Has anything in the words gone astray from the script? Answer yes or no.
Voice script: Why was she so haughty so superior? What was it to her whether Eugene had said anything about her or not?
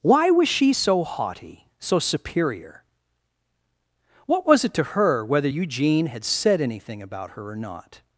no